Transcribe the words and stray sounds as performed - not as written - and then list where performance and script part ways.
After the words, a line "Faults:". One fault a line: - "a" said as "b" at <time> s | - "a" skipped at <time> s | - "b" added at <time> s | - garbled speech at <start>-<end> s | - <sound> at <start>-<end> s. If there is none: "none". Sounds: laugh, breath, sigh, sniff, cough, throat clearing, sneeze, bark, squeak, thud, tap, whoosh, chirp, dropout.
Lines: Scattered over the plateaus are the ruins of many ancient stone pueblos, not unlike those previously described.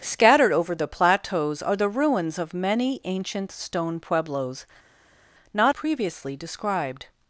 Scattered over the plateaus are the ruins of many ancient stone pueblos, not previously described.
Faults:
- "unlike those" skipped at 5.8 s